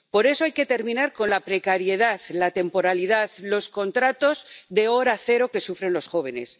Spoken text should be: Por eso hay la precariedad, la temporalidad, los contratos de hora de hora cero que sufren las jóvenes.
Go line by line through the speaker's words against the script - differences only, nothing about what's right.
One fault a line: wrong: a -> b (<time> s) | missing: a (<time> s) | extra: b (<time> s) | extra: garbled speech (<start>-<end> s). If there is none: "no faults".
extra: que terminar con (0.5 s)
missing: de hora (5.2 s)
wrong: las -> los (5.9 s)